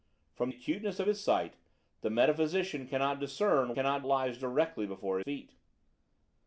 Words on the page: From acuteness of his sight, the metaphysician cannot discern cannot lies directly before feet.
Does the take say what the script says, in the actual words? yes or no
yes